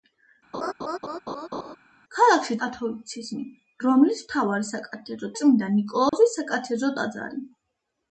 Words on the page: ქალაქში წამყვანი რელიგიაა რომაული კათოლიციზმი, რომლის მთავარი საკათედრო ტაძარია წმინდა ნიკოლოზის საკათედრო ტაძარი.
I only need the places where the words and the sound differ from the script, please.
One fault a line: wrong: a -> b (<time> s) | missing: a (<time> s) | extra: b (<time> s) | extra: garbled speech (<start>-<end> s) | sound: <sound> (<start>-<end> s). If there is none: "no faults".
sound: laugh (0.5-1.8 s)
missing: წამყვანი რელიგიაა რომაული (2.6 s)
missing: ტაძარია (5.3 s)
sound: dropout (6.1-6.1 s)